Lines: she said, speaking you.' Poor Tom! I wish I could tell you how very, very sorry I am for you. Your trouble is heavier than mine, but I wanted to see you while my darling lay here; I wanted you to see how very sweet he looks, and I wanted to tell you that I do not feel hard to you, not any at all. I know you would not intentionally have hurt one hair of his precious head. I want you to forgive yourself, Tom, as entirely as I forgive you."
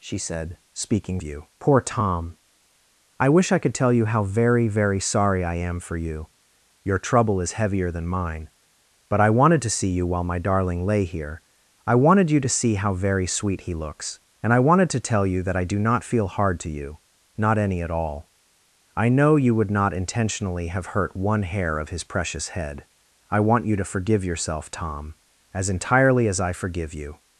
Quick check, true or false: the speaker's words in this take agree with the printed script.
true